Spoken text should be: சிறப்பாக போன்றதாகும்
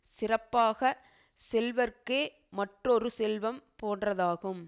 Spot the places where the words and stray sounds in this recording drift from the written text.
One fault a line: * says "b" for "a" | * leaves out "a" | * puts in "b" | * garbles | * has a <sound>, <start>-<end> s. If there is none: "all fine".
* puts in "செல்வர்க்கே மற்றொரு செல்வம்"